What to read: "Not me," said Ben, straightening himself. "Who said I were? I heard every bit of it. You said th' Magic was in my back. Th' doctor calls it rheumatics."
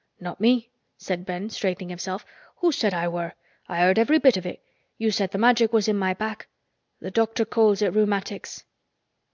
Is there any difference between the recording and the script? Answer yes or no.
no